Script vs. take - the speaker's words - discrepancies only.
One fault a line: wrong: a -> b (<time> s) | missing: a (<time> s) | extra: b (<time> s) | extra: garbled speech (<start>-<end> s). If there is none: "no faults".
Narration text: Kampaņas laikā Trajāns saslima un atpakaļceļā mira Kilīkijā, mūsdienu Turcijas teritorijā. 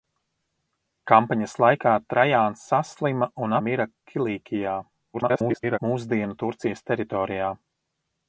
missing: atpakaļceļā (3.5 s)
extra: garbled speech (5.1-5.8 s)